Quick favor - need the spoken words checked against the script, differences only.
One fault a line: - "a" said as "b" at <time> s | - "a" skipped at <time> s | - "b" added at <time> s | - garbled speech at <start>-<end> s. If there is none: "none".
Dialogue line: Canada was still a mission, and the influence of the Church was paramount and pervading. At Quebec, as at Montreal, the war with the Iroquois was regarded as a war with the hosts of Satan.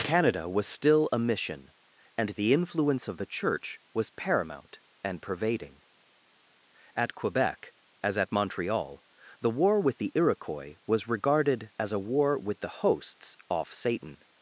- "of" said as "off" at 13.5 s